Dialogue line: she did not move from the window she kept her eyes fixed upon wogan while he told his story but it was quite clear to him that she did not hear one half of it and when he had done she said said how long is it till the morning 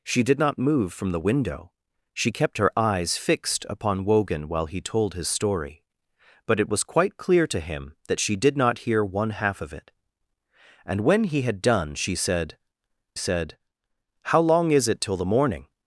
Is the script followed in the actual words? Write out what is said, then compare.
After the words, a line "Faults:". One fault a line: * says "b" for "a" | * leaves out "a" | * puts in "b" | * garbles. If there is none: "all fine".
she did not move from the window she kept her eyes fixed upon wogan while he told his story but it was quite clear to him that she did not hear one half of it and when he had done she said said how long is it till the morning
Faults:
all fine